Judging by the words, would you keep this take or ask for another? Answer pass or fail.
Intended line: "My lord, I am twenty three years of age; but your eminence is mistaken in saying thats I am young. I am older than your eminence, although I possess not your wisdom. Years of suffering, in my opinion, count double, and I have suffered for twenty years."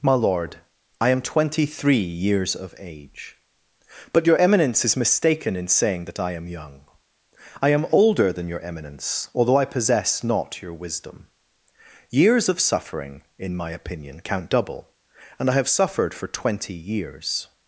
fail